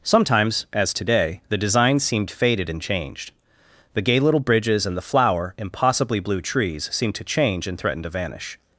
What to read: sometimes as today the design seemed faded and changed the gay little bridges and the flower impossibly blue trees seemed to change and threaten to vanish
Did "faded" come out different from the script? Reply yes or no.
no